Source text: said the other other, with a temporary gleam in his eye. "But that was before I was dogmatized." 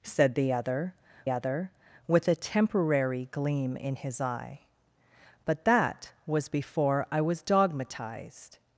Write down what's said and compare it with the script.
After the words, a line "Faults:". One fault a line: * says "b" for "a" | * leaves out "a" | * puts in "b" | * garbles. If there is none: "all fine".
said the other other, with a temporary gleam in his eye. "But that was before I was dogmatized."
Faults:
all fine